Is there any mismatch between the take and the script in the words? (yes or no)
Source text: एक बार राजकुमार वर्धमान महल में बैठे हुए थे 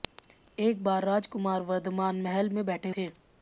yes